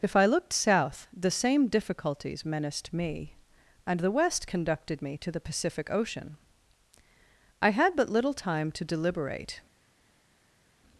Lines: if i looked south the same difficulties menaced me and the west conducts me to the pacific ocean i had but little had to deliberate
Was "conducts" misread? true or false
true